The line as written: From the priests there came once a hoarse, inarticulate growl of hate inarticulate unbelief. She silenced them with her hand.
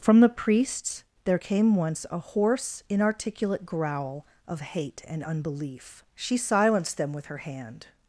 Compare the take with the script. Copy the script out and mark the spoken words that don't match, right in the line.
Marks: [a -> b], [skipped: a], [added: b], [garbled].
From the priests there came once a hoarse, inarticulate growl of hate [inarticulate -> and] unbelief. She silenced them with her hand.